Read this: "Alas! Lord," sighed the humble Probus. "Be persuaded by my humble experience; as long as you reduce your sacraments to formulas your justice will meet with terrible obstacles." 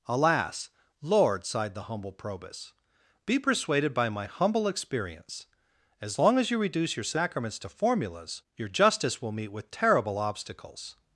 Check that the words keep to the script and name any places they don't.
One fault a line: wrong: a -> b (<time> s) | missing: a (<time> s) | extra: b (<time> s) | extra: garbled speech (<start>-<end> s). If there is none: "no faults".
no faults